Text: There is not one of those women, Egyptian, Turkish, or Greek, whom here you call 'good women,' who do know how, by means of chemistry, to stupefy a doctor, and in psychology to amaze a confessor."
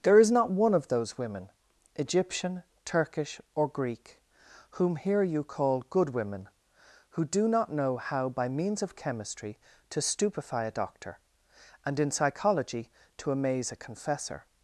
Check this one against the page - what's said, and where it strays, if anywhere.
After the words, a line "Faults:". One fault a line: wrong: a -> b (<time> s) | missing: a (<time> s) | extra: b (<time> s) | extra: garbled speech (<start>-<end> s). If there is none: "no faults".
There is not one of those women, Egyptian, Turkish, or Greek, whom here you call 'good women,' who do not know how, by means of chemistry, to stupefy a doctor, and in psychology to amaze a confessor."
Faults:
extra: not (7.5 s)